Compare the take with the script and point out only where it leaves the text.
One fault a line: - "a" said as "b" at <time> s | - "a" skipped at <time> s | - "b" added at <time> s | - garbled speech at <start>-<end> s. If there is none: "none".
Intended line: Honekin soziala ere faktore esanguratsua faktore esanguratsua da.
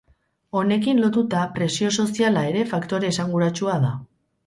- "lotuta presio" added at 1.0 s
- "faktore esanguratsua" skipped at 3.8 s